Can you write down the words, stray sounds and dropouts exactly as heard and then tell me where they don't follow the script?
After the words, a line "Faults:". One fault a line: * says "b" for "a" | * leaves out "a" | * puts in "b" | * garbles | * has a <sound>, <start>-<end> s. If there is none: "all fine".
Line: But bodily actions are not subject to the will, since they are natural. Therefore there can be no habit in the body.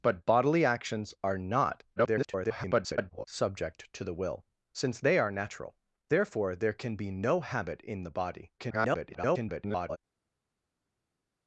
But bodily actions are not [garbled] subject to the will, since they are natural. Therefore there can be no habit in the body. [garbled]
Faults:
* garbles
* garbles